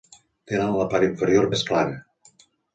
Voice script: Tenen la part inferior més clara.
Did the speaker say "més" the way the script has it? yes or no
yes